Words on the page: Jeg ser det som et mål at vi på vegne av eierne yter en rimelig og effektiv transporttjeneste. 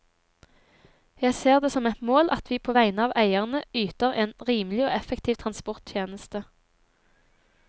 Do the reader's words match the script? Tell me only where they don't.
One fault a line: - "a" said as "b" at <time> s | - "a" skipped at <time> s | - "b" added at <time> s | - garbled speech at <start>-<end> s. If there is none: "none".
none